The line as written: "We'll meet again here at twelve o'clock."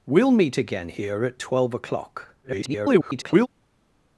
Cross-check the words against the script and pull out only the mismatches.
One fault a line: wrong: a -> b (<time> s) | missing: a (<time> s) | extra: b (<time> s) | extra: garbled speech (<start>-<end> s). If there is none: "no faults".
extra: garbled speech (2.4-3.5 s)